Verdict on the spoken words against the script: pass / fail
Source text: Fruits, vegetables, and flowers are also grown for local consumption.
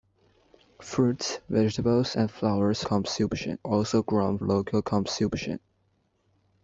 fail